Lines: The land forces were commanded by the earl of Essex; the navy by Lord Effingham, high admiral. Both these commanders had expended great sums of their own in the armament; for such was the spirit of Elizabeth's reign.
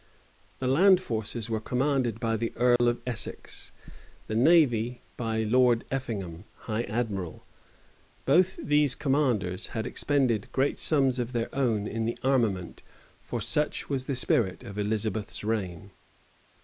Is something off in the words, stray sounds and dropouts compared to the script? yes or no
yes